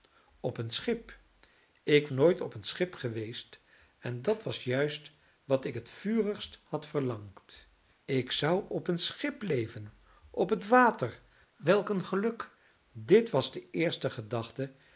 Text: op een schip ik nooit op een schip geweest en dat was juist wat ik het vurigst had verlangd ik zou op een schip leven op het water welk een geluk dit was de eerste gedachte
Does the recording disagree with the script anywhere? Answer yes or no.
no